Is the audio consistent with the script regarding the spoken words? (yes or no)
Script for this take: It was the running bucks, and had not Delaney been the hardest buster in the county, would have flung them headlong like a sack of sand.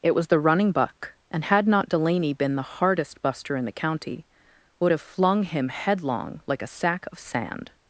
no